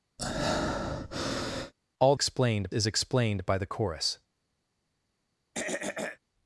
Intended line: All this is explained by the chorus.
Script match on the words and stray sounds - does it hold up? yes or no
no